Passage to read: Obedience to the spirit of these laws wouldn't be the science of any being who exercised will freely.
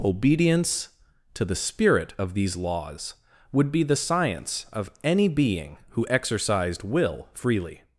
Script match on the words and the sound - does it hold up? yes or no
no